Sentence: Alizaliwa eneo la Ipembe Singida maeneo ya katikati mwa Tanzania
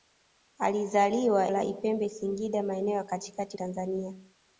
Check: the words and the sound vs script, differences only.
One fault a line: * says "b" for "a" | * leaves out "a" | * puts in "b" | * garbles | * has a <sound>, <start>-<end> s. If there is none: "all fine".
* leaves out "eneo"
* leaves out "mwa"